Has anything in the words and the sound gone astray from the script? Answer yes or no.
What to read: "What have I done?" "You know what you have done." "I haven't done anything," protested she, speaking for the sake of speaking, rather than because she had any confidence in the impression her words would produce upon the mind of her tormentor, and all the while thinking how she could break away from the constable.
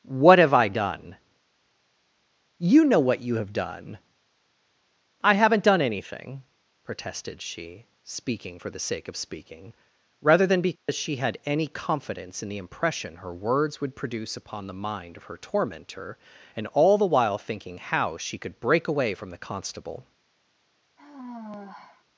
yes